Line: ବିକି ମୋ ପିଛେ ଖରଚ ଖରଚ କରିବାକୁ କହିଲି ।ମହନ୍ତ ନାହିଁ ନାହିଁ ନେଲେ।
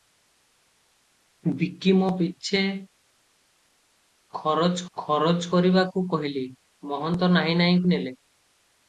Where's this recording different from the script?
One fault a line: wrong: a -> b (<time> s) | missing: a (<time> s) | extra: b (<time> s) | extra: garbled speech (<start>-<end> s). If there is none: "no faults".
no faults